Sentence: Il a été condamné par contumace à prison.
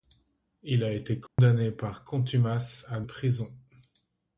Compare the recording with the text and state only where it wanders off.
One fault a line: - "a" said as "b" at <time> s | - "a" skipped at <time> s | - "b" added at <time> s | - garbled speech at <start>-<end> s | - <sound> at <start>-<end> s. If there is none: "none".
- dropout at 1.3-1.4 s